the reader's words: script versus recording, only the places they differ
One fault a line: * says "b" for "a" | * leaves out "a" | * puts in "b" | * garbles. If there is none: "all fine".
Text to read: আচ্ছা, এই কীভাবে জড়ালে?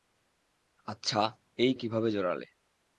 all fine